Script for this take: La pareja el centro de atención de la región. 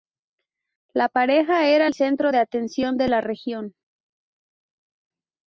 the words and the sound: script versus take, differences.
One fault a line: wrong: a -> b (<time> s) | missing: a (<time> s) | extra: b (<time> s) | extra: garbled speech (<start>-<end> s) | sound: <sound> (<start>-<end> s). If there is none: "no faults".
extra: era (1.7 s)